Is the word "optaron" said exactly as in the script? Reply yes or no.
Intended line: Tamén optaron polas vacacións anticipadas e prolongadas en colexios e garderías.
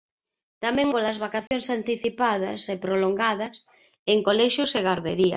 no